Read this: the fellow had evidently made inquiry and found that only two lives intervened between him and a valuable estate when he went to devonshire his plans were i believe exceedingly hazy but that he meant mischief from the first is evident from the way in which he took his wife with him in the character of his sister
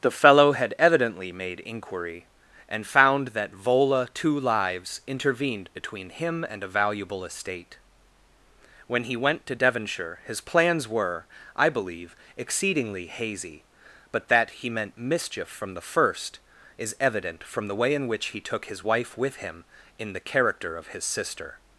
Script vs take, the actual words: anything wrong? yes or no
yes